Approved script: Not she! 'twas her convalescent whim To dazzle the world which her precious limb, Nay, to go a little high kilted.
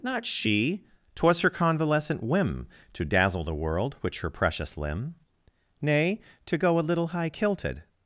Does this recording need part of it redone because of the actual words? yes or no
no